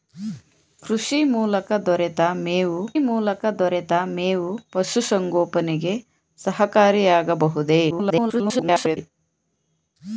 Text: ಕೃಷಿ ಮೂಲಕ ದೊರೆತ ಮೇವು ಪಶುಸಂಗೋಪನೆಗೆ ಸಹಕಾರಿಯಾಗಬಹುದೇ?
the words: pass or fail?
fail